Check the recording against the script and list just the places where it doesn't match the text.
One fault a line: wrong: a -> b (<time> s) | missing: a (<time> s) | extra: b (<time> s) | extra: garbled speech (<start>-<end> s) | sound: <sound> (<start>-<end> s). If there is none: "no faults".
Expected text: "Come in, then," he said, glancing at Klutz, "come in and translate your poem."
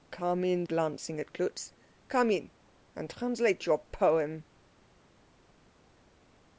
missing: then he said (0.6 s)